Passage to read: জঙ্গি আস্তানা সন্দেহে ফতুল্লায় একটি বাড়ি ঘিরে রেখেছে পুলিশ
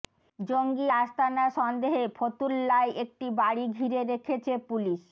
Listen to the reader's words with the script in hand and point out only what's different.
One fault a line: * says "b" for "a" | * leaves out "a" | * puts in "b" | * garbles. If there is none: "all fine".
all fine